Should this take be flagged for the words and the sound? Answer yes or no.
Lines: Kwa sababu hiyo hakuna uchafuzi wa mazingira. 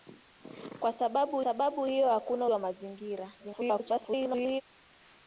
yes